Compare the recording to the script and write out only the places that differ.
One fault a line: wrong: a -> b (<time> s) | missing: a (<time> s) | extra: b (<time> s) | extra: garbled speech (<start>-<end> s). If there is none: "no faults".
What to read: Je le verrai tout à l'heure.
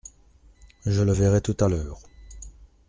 no faults